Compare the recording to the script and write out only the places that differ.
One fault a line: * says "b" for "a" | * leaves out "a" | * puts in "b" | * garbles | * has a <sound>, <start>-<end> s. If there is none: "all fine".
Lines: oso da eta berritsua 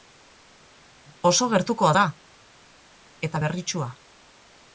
* puts in "gertukoa"